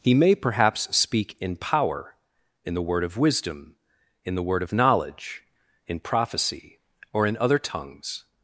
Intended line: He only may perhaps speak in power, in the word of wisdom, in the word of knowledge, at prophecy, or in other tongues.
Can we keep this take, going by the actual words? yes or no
no